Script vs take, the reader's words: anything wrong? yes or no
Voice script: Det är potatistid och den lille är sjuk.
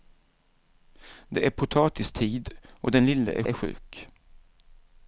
yes